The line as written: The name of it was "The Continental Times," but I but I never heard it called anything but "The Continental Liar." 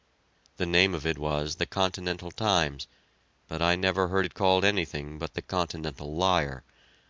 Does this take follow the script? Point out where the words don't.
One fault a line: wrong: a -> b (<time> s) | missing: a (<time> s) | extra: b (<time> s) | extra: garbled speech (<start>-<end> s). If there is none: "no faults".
missing: but I (3.8 s)